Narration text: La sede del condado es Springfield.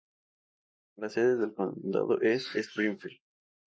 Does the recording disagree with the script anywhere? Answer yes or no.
no